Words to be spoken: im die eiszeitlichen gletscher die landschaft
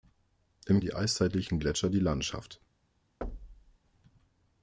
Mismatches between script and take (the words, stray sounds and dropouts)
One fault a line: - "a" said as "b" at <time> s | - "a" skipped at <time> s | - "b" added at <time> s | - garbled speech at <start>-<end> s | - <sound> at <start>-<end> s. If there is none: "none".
- thud at 3.2-3.8 s